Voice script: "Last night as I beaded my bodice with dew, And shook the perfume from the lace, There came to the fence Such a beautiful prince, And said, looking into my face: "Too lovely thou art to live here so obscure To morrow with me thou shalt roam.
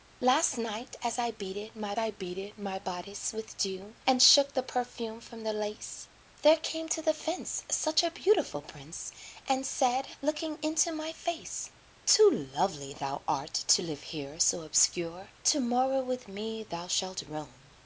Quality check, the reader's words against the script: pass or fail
fail